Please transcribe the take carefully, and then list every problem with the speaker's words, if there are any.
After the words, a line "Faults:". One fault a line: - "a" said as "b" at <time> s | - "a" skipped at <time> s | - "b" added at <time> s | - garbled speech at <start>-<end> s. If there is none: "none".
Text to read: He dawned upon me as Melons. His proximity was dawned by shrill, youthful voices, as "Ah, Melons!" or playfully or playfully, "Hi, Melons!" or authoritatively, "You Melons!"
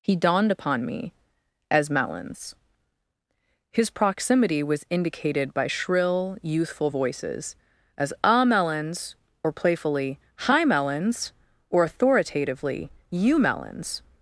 He dawned upon me as Melons. His proximity was indicated by shrill, youthful voices, as "Ah, Melons!" or playfully, "Hi, Melons!" or authoritatively, "You Melons!"
Faults:
- "dawned" said as "indicated" at 4.9 s
- "or playfully" skipped at 10.2 s